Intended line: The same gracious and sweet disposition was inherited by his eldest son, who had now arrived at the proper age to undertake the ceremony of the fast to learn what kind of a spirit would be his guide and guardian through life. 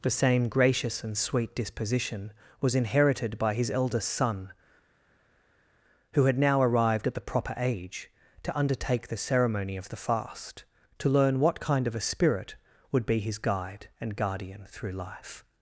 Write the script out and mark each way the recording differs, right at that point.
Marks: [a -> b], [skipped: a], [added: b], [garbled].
The same gracious and sweet disposition was inherited by his eldest son, who had now arrived at the proper age to undertake the ceremony of the fast to learn what kind of a spirit would be his guide and guardian through life.